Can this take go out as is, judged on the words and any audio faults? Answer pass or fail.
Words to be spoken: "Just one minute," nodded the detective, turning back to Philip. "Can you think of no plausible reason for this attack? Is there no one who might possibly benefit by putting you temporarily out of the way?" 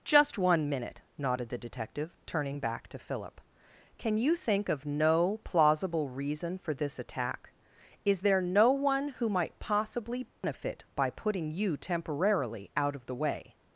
fail